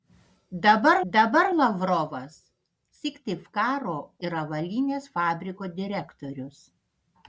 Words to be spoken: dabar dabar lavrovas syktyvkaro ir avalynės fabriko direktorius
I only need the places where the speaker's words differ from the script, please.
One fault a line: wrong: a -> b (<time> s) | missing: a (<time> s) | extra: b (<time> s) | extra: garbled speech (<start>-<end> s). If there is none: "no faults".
no faults